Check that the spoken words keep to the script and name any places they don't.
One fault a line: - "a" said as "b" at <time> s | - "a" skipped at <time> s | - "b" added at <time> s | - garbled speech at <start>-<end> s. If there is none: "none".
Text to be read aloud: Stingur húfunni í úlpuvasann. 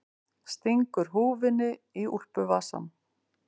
none